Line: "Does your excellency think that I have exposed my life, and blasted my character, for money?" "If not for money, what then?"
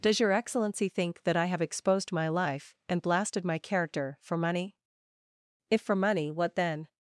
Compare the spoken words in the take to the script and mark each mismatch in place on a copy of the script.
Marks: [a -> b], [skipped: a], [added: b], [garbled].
"Does your excellency think that I have exposed my life, and blasted my character, for money?" "If [skipped: not] for money, what then?"